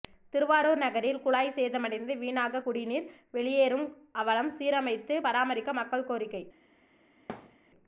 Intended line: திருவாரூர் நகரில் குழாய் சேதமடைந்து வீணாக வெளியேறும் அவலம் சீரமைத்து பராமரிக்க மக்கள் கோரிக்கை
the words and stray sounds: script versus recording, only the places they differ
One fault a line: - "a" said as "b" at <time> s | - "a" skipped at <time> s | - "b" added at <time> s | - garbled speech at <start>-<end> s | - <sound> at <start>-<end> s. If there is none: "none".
- "குடிநீர்" added at 2.6 s
- thud at 7.3-7.6 s